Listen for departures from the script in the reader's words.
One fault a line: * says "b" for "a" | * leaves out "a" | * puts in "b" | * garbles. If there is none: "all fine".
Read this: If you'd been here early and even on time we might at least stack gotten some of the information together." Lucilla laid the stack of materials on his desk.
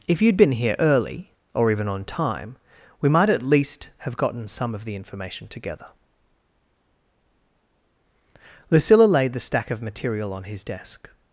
* says "or" for "and"
* says "have" for "stack"
* says "material" for "materials"